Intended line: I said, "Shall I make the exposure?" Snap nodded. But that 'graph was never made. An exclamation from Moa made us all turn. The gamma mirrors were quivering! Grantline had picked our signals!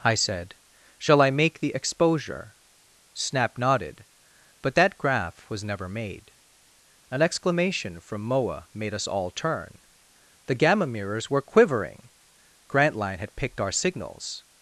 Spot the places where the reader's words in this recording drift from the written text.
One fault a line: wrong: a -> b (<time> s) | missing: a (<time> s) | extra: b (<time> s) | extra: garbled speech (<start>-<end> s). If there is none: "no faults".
no faults